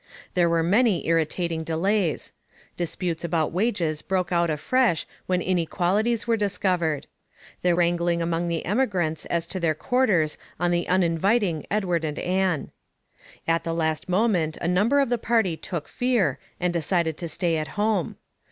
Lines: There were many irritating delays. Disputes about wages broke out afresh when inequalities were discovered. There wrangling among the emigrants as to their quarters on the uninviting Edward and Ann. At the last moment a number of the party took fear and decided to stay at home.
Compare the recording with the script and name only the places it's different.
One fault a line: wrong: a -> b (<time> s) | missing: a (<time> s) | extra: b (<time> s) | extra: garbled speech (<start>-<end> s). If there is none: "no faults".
no faults